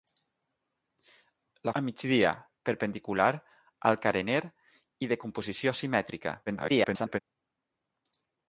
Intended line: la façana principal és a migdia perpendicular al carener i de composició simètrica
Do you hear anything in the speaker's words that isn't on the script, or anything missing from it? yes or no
yes